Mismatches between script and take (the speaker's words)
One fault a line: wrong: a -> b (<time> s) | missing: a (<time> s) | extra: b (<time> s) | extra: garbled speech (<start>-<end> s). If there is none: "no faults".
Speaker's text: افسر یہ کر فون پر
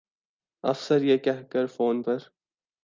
extra: کہہ (1.2 s)